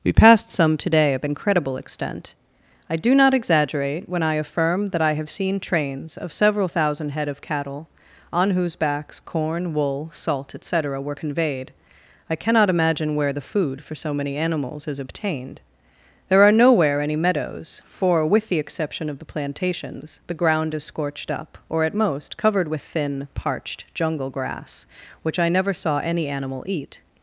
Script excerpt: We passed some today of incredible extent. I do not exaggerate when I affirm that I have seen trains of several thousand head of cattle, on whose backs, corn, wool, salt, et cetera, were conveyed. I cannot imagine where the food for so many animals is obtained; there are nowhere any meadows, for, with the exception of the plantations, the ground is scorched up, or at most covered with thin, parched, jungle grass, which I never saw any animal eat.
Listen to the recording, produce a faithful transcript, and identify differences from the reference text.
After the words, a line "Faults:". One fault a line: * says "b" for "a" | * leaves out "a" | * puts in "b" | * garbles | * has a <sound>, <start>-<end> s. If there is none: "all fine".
We passed some today of incredible extent. I do not exaggerate when I affirm that I have seen trains of several thousand head of cattle, on whose backs, corn, wool, salt, et cetera, were conveyed. I cannot imagine where the food for so many animals is obtained; there are nowhere any meadows, for, with the exception of the plantations, the ground is scorched up, or at most covered with thin, parched, jungle grass, which I never saw any animal eat.
Faults:
all fine